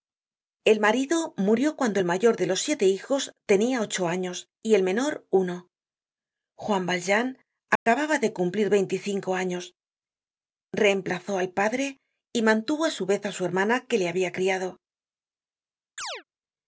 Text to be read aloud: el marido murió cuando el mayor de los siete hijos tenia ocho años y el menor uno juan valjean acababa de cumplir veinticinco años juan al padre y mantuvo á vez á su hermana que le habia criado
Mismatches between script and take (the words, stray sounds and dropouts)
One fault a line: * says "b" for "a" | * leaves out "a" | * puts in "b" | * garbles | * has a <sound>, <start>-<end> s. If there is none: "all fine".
* has a dropout, 7.8-7.9 s
* says "reemplazó" for "juan"
* puts in "su"
* has a chirp, 16.0-16.2 s